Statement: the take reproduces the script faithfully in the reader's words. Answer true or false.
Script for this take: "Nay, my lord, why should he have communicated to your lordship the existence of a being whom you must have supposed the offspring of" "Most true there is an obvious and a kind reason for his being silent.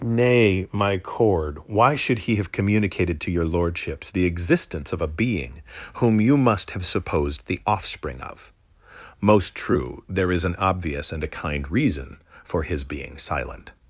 false